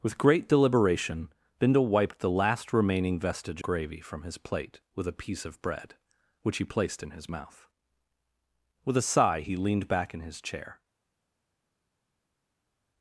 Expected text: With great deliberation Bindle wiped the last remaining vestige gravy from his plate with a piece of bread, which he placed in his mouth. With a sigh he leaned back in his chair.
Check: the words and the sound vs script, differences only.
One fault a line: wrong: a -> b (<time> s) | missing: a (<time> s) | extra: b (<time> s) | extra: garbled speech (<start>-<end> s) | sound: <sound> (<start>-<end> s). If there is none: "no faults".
no faults